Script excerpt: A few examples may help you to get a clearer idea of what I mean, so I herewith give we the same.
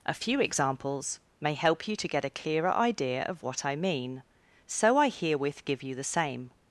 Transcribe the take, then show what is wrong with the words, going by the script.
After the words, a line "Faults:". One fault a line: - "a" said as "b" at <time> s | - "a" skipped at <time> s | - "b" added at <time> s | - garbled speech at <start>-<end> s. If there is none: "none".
A few examples may help you to get a clearer idea of what I mean, so I herewith give you the same.
Faults:
- "we" said as "you" at 5.8 s